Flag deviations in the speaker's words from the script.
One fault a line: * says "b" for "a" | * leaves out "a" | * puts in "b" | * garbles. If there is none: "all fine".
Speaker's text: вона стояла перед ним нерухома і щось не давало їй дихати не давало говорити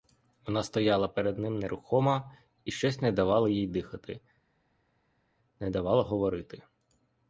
all fine